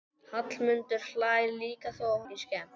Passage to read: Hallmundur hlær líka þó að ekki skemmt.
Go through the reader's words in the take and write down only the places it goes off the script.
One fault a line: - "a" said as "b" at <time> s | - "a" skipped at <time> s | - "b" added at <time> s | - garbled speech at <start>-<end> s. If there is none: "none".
none